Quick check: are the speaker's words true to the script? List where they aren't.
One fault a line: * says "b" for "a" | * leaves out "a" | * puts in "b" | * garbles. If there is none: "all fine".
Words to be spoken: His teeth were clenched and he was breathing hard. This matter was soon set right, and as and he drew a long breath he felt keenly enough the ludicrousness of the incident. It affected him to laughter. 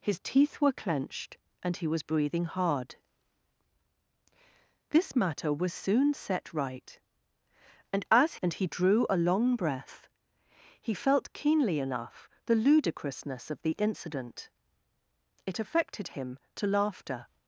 all fine